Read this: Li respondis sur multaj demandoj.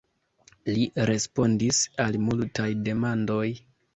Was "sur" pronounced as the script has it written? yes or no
no